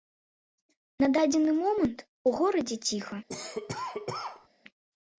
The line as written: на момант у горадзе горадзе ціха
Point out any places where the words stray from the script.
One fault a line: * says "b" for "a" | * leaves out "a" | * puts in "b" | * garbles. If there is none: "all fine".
* puts in "дадзены"
* leaves out "горадзе"